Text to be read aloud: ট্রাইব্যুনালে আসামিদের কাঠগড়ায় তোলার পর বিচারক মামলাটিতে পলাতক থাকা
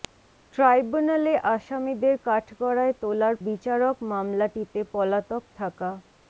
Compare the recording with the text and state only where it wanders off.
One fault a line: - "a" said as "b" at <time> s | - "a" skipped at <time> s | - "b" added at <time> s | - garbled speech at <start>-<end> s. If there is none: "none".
- "পর" skipped at 3.4 s